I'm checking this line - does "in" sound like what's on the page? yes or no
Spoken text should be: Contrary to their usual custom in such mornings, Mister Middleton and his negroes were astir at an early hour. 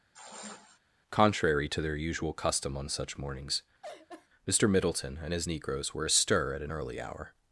no